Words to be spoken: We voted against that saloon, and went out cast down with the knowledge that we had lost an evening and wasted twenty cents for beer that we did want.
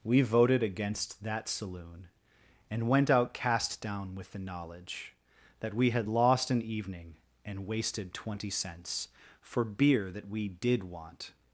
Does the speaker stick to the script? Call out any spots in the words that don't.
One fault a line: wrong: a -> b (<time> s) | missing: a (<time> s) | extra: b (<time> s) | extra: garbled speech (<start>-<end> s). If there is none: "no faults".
no faults